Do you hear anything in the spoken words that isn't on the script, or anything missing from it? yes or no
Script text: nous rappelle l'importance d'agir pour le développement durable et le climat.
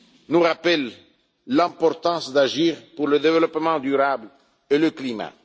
no